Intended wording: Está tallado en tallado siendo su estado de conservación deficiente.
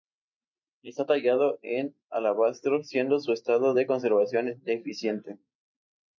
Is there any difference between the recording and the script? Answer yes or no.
yes